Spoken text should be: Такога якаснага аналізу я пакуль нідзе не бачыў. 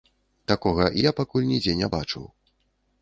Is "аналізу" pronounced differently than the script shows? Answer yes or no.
yes